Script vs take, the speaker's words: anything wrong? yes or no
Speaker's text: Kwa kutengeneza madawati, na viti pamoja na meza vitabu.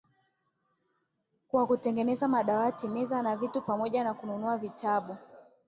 yes